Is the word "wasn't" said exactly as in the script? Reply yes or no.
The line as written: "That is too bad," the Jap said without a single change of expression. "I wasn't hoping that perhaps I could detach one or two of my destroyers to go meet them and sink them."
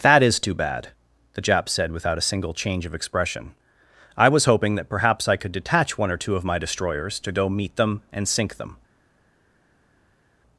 no